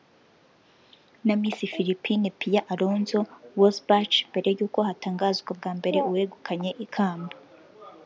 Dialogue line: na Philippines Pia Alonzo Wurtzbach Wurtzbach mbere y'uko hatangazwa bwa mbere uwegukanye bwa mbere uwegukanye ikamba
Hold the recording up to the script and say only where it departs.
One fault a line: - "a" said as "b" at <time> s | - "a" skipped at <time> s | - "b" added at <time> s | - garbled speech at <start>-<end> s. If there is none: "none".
- "Miss" added at 1.4 s
- "Wurtzbach" skipped at 4.2 s
- "bwa mbere uwegukanye" skipped at 6.7 s